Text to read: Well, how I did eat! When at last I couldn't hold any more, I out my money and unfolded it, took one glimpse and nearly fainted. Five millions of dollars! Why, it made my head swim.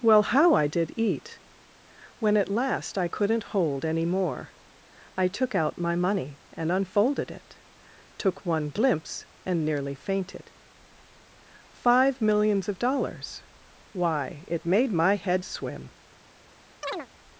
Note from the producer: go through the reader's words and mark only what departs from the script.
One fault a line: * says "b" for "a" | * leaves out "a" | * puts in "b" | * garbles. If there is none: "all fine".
* puts in "took"